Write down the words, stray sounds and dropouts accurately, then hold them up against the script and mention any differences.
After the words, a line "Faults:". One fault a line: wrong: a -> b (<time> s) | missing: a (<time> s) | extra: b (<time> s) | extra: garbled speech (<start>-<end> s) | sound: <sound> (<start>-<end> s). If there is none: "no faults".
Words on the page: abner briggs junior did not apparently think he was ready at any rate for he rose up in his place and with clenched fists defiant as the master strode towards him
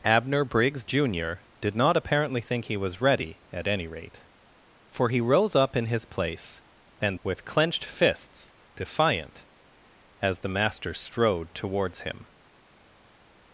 abner briggs junior did not apparently think he was ready at any rate for he rose up in his place and with clenched fists defiant as the master strode towards him
Faults:
no faults